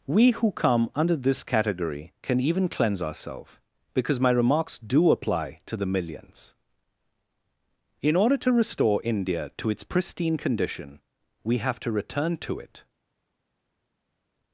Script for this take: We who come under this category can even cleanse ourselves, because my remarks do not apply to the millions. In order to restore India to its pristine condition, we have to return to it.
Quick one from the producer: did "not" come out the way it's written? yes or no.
no